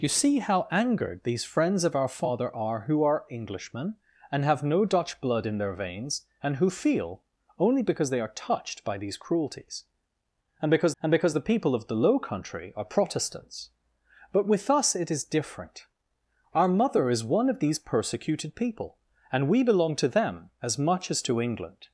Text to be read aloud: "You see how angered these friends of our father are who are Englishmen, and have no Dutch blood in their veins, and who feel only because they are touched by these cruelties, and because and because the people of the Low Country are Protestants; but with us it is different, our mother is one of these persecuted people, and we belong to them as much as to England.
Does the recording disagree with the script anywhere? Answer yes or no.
no